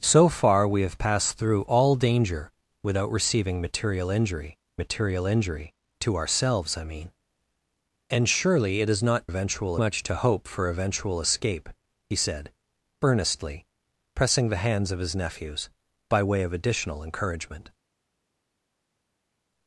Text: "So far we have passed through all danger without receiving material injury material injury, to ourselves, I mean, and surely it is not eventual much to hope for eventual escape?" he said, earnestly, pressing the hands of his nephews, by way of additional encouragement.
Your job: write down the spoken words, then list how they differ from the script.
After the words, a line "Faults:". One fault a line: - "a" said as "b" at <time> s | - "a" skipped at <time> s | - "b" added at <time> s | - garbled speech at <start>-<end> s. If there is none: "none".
"So far we have passed through all danger without receiving material injury material injury, to ourselves, I mean, and surely it is not eventual much to hope for eventual escape?" he said, earnestly, pressing the hands of his nephews, by way of additional encouragement.
Faults:
none